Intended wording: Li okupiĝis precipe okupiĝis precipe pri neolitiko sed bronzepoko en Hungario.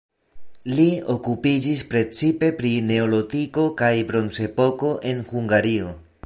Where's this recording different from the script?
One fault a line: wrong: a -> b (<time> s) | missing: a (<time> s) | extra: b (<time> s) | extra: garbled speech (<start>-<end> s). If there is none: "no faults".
missing: okupiĝis precipe (2.5 s)
wrong: sed -> kaj (3.8 s)